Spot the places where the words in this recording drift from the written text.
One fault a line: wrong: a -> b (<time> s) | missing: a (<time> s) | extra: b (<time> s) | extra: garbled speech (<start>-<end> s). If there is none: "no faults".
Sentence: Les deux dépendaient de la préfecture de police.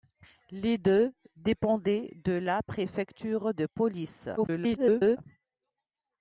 extra: garbled speech (4.4-5.2 s)